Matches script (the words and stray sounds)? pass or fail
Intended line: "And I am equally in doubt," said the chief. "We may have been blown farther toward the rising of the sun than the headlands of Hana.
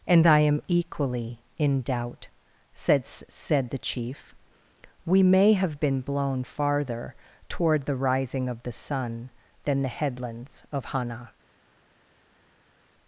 fail